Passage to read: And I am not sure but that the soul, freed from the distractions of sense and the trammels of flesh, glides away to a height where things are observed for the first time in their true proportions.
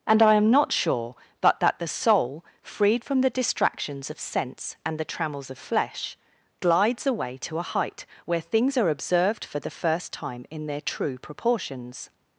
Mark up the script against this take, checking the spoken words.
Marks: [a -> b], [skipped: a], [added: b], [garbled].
And I am not sure but that the soul, freed from the distractions of sense and the trammels of flesh, glides away to a height where things are observed for the first time in their true proportions.